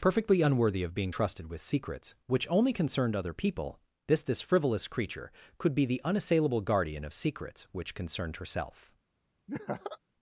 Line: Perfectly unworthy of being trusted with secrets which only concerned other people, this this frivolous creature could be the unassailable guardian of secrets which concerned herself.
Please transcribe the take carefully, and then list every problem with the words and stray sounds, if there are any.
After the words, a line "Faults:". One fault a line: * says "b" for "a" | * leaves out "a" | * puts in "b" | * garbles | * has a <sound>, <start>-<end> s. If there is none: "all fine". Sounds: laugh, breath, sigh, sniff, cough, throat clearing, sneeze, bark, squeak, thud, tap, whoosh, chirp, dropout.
Perfectly unworthy of being trusted with secrets which only concerned other people, this this frivolous creature could be the unassailable guardian of secrets which concerned herself.
Faults:
* has a laugh, 9.5-10.0 s